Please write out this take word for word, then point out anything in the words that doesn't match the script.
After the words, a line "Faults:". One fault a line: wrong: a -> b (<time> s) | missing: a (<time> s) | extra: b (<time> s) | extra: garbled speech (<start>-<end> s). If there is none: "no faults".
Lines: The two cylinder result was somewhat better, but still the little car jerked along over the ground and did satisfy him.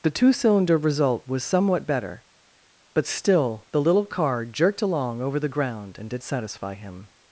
The two cylinder result was somewhat better, but still the little car jerked along over the ground and did satisfy him.
Faults:
no faults